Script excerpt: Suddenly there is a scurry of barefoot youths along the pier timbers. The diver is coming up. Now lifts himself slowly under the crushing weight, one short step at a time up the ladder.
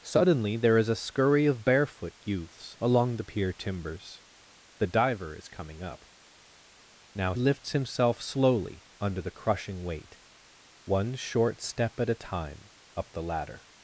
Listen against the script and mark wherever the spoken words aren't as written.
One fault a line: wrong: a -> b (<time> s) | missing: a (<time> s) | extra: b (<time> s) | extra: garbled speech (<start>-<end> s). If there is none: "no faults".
no faults